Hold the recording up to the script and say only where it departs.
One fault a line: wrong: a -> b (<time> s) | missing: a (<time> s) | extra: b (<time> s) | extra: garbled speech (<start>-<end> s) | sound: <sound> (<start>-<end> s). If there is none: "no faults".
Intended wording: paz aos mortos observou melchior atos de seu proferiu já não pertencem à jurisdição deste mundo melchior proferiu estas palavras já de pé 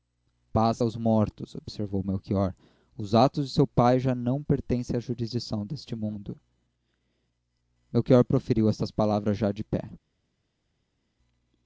extra: os (3.0 s)
wrong: proferiu -> pai (3.7 s)